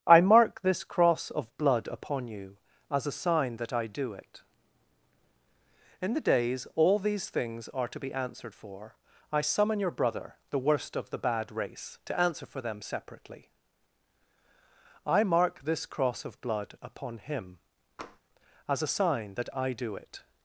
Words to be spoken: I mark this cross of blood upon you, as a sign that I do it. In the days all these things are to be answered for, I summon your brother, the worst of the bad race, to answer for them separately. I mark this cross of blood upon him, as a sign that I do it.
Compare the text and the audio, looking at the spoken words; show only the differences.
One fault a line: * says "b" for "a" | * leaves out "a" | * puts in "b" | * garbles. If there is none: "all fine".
all fine